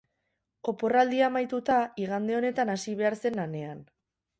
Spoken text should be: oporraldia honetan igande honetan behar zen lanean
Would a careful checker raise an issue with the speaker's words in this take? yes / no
yes